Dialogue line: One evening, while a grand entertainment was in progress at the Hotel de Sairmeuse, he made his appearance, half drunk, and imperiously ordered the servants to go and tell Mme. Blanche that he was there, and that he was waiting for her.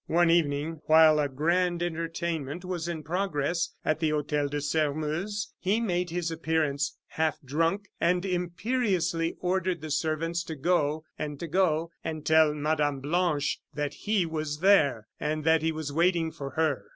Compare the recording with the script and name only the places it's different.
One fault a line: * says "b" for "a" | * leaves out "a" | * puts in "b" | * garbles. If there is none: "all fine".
* puts in "to go and"